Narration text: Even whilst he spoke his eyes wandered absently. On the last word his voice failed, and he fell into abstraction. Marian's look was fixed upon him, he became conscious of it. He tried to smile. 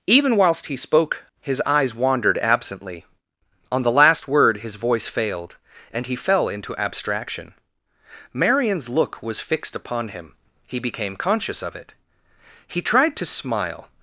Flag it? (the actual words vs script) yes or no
no